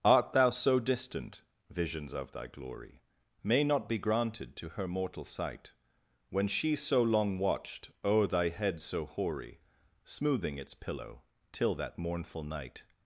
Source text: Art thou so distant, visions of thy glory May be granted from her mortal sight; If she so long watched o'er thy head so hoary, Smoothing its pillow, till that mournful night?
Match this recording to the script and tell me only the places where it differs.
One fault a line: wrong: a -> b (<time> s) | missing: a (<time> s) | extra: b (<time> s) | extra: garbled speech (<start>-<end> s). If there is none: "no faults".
extra: not (3.6 s)
wrong: from -> to (4.5 s)
wrong: If -> When (6.3 s)